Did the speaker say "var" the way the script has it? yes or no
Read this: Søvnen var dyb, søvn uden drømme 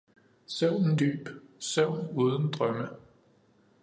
no